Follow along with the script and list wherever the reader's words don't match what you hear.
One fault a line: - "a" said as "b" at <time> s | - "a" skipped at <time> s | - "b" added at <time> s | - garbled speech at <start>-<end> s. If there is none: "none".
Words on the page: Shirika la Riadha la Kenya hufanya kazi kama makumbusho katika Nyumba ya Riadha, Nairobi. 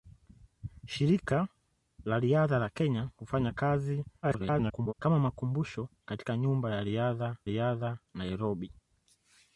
- garbled speech at 4.2-4.9 s
- "Riadha" added at 7.5 s